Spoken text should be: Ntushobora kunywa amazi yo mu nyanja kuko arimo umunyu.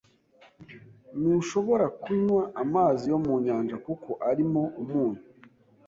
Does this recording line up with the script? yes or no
yes